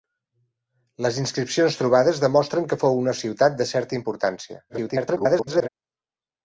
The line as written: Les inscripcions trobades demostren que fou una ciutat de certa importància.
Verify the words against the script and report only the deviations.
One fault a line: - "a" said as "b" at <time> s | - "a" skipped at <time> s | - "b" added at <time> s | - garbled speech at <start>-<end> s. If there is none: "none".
- garbled speech at 4.7-5.7 s